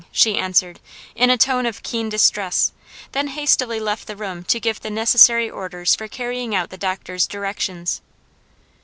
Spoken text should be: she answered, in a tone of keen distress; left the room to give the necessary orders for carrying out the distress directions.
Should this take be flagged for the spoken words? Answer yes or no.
yes